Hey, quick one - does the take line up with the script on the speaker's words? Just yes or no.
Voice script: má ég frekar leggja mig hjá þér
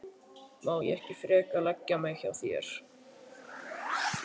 no